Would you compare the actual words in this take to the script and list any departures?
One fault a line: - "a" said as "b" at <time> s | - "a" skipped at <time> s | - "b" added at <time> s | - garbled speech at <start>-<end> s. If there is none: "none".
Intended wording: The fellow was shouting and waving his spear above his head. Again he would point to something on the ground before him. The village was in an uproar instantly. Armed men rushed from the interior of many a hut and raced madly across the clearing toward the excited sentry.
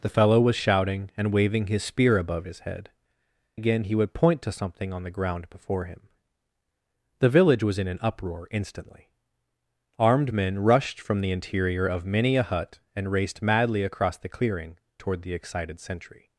none